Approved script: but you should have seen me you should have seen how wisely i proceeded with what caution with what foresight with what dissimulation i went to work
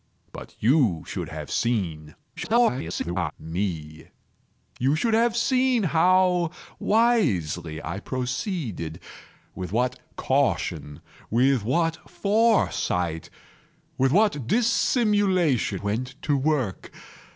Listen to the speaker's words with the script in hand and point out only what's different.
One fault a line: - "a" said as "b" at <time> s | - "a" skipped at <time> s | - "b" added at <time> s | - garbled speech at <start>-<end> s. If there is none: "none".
- garbled speech at 2.4-3.3 s
- "i" skipped at 15.8 s